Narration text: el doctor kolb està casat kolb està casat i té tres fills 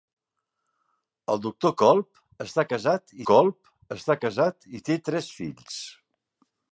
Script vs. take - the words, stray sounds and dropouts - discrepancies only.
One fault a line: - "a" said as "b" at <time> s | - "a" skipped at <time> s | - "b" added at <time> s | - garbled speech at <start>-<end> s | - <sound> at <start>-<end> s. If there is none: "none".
none